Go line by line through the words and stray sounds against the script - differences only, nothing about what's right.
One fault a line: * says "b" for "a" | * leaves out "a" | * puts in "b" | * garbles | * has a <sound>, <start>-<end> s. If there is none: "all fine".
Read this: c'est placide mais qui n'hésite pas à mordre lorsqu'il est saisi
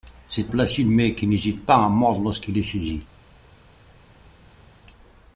all fine